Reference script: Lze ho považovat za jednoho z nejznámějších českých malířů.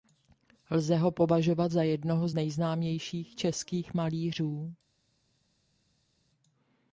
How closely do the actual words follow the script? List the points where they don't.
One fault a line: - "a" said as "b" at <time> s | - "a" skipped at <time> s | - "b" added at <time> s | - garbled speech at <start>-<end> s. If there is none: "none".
none